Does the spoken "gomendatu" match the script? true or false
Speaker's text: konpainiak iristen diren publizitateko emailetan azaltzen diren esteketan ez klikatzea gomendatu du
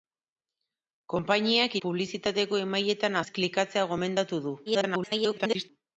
true